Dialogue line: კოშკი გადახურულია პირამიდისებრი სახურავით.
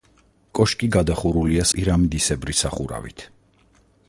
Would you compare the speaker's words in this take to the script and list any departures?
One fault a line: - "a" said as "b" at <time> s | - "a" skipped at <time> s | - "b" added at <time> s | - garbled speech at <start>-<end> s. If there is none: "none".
none